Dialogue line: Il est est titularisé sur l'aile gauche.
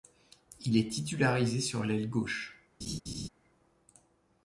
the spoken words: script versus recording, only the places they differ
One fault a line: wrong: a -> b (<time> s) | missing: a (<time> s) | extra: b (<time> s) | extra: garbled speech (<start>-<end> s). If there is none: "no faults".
missing: est (0.9 s)